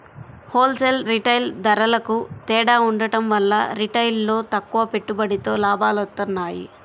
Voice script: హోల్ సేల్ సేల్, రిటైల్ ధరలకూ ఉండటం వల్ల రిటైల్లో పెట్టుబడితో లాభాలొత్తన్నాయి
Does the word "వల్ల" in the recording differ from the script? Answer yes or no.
no